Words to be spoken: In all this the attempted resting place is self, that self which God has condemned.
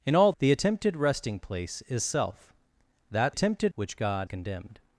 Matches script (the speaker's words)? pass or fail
fail